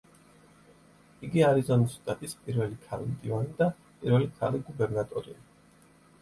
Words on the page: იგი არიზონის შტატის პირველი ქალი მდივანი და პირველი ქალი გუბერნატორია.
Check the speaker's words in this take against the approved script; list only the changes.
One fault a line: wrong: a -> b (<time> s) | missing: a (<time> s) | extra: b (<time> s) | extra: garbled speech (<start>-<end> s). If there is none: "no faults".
no faults